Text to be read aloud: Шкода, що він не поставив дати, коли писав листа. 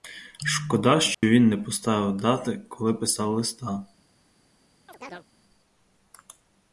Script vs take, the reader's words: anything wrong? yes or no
no